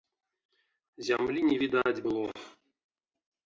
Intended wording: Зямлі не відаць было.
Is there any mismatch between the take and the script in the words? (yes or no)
no